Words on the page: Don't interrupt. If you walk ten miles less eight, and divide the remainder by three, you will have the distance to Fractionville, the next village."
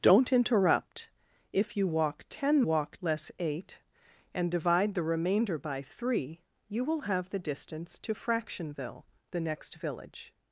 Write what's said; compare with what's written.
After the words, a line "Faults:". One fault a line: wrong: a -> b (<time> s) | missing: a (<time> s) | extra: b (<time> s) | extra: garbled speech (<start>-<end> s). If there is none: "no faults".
Don't interrupt. If you walk ten walk less eight, and divide the remainder by three, you will have the distance to Fractionville, the next village."
Faults:
wrong: miles -> walk (2.6 s)